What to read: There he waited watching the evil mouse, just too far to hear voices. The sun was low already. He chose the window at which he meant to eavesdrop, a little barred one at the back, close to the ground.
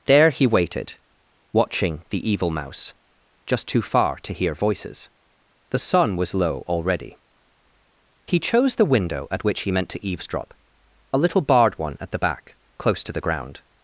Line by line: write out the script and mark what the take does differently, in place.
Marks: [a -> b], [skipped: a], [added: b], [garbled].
There he waited watching the evil mouse, just too far to hear voices. The sun was low already. He chose the window at which he meant to eavesdrop, a little barred one at the back, close to the ground.